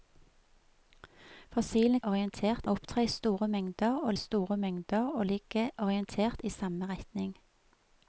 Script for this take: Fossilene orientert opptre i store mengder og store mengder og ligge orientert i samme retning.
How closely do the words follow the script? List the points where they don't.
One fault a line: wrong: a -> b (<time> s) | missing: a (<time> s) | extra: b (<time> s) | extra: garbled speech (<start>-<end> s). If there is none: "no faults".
no faults